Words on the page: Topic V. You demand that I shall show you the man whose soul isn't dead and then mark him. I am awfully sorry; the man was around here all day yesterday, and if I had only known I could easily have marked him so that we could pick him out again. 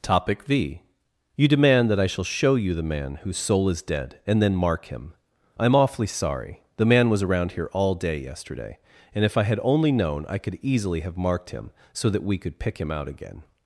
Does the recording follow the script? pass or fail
fail